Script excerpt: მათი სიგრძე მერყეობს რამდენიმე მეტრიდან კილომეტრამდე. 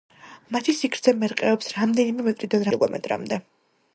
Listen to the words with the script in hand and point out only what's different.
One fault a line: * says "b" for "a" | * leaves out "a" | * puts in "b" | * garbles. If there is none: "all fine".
all fine